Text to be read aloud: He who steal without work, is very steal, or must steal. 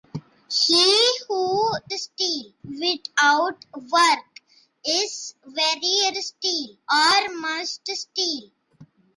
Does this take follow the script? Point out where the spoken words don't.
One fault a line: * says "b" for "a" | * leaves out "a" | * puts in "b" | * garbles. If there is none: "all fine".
all fine